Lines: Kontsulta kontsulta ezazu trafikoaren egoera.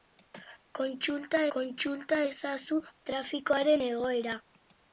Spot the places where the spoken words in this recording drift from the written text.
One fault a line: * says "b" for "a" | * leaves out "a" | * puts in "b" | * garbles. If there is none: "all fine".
all fine